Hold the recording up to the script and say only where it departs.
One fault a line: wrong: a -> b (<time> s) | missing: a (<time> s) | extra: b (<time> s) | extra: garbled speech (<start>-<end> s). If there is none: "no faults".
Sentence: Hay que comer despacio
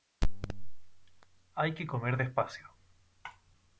no faults